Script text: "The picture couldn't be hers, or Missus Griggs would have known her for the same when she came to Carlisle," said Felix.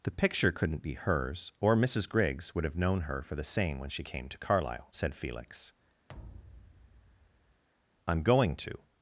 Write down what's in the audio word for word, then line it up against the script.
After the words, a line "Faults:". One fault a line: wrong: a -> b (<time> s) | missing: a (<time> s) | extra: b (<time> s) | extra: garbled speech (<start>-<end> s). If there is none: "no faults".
"The picture couldn't be hers, or Missus Griggs would have known her for the same when she came to Carlisle," said Felix. "I'm going to
Faults:
extra: I'm going to (8.1 s)